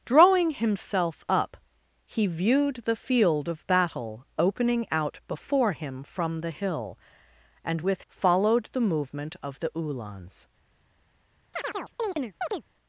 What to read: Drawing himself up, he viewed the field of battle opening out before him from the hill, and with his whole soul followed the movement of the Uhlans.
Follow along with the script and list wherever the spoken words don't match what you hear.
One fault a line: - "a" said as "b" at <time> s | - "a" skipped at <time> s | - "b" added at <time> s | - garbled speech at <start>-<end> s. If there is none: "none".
- "his whole soul" skipped at 8.0 s